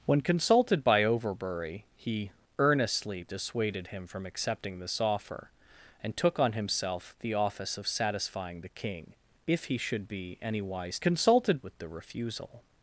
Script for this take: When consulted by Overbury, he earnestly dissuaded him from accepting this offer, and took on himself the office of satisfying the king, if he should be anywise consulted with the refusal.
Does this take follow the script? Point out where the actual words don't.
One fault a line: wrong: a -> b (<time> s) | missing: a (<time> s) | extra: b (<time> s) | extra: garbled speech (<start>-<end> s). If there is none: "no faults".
no faults